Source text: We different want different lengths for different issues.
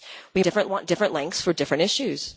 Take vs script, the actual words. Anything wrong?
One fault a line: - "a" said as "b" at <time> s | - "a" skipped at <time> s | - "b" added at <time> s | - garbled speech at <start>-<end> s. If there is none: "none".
none